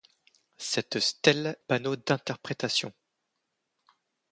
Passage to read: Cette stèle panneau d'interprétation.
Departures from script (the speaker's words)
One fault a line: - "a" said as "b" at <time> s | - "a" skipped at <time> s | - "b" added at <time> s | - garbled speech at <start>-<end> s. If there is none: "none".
none